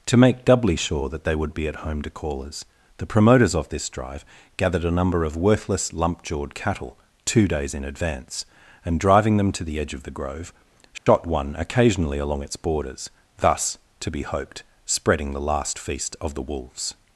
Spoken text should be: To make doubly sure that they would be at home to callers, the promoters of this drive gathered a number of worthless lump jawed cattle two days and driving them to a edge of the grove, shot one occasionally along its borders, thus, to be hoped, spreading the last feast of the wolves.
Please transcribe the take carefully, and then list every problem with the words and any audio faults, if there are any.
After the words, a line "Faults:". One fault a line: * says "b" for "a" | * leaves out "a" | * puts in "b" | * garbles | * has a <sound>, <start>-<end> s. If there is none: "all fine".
To make doubly sure that they would be at home to callers, the promoters of this drive gathered a number of worthless lump jawed cattle two days in advance, and driving them to the edge of the grove, shot one occasionally along its borders, thus, to be hoped, spreading the last feast of the wolves.
Faults:
* puts in "in advance"
* says "the" for "a"
* has a dropout, 11.0-11.1 s